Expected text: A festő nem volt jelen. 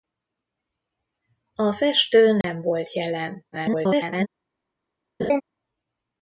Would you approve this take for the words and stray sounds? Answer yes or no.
no